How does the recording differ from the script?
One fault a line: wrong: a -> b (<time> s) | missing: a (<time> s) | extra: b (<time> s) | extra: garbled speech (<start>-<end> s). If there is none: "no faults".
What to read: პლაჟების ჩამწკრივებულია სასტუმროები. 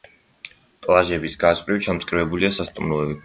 extra: გასწვრივ (1.4 s)